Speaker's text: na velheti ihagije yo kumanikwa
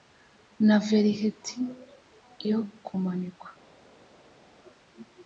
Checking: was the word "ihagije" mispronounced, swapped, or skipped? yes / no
yes